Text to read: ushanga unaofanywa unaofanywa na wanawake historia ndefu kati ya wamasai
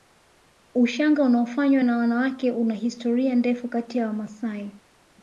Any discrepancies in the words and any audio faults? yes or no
yes